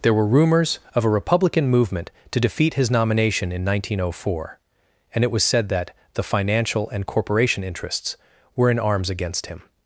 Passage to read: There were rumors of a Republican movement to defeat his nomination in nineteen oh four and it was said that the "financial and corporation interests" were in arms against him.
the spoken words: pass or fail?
pass